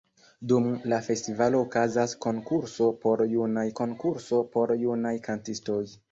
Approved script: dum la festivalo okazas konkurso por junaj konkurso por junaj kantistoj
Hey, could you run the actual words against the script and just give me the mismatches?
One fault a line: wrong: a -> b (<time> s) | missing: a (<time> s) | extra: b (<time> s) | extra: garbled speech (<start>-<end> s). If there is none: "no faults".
no faults